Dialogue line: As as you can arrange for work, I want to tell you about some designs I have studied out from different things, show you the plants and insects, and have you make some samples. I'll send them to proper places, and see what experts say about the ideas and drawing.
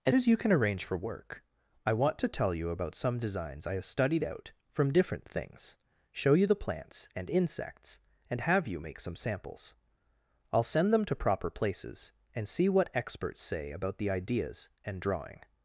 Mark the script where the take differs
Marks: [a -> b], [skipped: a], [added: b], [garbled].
As as you can arrange for work, I want to tell you about some designs I have studied out from different things, show you the plants and insects, and have you make some samples. I'll send them to proper places, and see what experts say about the ideas and drawing.